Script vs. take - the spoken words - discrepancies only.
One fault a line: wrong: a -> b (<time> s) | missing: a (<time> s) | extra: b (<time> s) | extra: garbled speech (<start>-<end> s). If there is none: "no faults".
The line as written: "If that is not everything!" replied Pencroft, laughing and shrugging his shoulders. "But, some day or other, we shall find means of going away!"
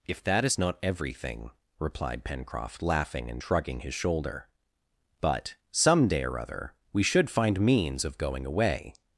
wrong: shoulders -> shoulder (3.9 s)
wrong: shall -> should (7.0 s)